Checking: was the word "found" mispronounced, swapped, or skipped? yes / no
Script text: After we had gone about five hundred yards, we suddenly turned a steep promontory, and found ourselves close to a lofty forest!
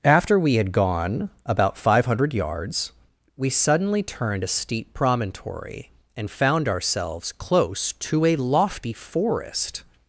no